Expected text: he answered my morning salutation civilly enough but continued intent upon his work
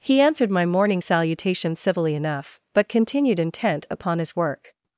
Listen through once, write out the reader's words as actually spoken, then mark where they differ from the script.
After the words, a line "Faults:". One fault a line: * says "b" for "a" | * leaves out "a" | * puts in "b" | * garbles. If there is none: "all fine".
he answered my morning salutation civilly enough but continued intent upon his work
Faults:
all fine